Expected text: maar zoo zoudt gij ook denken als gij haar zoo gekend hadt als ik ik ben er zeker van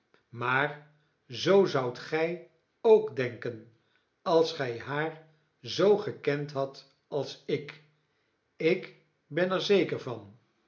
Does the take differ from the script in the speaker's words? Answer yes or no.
no